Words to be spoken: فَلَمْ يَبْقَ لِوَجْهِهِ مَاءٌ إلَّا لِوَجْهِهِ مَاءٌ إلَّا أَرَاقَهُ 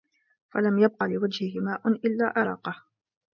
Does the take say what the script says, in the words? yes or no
no